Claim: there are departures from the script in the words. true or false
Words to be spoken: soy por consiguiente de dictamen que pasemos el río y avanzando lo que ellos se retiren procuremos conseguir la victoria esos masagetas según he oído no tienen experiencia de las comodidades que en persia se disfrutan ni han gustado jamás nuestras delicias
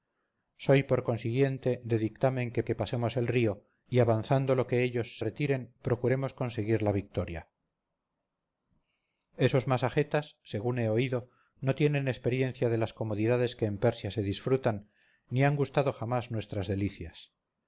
true